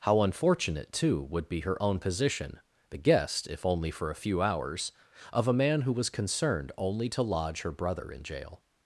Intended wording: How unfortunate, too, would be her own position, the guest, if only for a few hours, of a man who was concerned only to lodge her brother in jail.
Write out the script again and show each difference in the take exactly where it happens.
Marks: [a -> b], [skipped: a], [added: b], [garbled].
How unfortunate, too, would be her own position, the guest, if only for a few hours, of a man who was concerned only to lodge her brother in jail.